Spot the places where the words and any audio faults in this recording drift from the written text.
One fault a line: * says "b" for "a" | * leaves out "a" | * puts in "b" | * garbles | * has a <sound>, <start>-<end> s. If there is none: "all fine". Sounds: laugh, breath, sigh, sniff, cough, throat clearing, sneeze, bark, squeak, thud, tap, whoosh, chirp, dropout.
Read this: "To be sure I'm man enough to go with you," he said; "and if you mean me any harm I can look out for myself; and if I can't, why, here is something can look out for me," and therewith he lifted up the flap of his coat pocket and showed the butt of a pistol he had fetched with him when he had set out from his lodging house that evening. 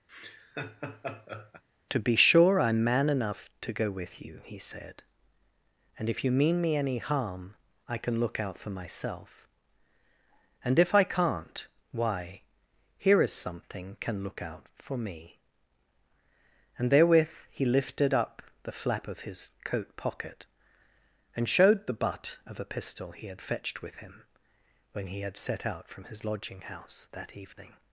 * has a laugh, 0.1-1.6 s